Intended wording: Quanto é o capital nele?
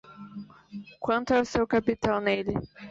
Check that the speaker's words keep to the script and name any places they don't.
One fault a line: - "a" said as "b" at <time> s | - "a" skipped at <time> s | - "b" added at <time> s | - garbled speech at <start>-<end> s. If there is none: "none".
- "seu" added at 1.4 s